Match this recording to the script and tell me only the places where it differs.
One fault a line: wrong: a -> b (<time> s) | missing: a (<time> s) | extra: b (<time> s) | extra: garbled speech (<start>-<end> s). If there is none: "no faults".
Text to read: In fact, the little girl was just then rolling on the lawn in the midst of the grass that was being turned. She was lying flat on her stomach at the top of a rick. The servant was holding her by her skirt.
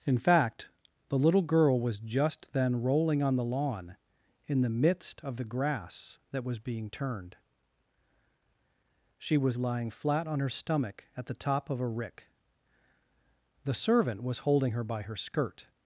no faults